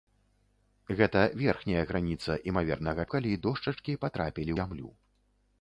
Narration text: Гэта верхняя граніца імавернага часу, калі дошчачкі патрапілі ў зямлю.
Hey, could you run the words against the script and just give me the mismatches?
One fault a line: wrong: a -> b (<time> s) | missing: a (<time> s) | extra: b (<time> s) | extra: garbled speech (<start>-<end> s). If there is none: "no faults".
missing: часу (3.0 s)
missing: ў (4.5 s)